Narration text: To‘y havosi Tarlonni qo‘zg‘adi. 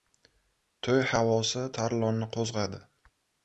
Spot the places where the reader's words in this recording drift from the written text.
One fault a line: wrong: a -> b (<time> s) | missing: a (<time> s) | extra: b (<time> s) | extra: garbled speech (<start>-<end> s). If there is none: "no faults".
no faults